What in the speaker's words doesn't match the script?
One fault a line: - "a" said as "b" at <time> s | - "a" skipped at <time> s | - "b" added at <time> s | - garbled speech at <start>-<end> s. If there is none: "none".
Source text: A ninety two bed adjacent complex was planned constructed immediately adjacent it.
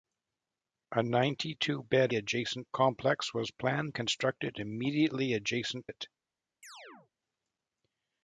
none